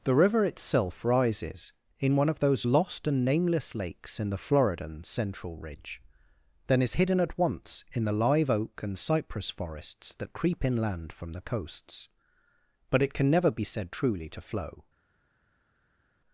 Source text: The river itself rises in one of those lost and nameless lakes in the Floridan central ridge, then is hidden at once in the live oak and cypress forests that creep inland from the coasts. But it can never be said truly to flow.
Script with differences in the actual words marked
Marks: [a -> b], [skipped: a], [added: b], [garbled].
The river itself rises in one of those lost and nameless lakes in the Floridan central ridge, then is hidden at once in the live oak and cypress forests that creep inland from the coasts. But it can never be said truly to flow.